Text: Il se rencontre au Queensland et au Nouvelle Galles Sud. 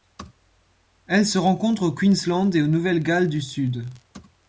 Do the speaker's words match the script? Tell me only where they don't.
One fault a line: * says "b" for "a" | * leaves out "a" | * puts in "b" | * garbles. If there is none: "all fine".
* says "Elle" for "Il"
* puts in "du"